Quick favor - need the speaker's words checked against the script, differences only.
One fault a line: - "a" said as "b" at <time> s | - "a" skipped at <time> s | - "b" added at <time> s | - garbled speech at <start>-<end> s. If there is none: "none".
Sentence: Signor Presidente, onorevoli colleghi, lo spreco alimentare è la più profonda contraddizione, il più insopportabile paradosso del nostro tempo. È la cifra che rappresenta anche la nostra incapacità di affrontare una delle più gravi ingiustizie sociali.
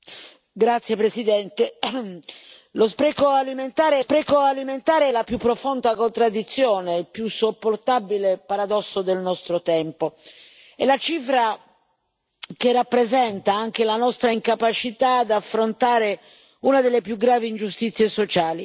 - "spreco alimentare" added at 4.0 s